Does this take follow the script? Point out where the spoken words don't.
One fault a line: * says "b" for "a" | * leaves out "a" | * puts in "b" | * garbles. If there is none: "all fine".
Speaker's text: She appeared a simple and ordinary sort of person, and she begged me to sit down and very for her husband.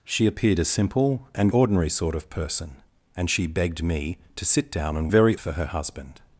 all fine